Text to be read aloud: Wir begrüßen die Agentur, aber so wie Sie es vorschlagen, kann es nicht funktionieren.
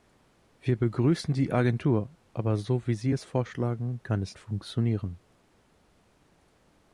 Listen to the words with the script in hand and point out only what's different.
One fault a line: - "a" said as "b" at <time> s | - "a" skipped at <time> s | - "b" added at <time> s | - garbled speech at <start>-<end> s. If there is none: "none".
- "nicht" skipped at 4.4 s